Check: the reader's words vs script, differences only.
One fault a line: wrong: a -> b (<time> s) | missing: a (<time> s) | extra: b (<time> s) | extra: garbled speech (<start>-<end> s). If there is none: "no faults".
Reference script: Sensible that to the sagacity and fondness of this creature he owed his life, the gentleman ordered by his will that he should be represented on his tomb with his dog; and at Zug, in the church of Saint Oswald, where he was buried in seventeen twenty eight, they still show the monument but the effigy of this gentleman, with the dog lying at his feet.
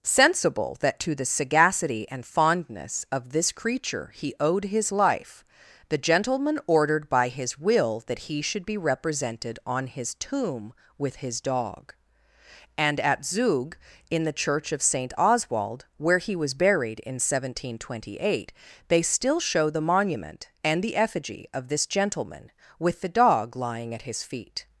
wrong: but -> and (20.6 s)